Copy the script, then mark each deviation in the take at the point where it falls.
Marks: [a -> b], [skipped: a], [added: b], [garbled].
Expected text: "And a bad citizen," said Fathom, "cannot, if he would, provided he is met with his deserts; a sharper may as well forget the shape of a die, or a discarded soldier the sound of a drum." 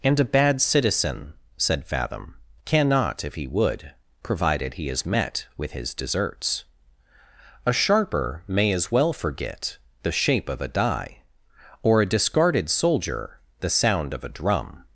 "And a bad citizen," said Fathom, "cannot, if he would, provided he is met with his deserts; a sharper may as well forget the shape of a die, or a discarded soldier the sound of a drum."